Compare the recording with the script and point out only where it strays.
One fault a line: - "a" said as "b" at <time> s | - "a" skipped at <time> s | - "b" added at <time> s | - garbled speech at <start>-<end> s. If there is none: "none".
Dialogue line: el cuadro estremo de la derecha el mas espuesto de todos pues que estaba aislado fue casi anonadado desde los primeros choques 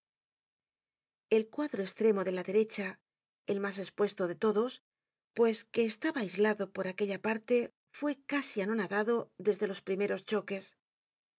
- "por aquella parte" added at 6.8 s